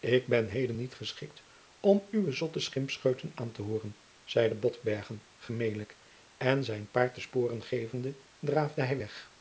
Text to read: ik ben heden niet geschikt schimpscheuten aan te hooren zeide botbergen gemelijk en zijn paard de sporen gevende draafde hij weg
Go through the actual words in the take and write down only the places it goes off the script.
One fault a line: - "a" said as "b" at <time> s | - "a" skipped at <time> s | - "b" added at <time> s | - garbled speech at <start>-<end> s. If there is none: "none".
- "om uwe zotte" added at 1.8 s